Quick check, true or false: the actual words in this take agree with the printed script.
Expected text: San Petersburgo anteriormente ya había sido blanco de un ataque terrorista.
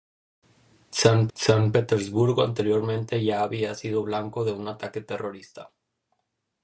false